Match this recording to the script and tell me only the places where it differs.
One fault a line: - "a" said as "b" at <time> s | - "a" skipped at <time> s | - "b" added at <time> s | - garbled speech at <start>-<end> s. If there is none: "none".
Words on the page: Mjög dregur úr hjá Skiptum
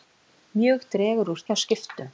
none